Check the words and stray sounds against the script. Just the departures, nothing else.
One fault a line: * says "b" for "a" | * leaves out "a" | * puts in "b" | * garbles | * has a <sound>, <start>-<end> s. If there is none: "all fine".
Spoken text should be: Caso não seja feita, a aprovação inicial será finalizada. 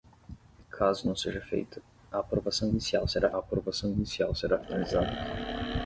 * puts in "aprovação inicial será"